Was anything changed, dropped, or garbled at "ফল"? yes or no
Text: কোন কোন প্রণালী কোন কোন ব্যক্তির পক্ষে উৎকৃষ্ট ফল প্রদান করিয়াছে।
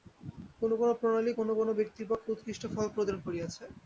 no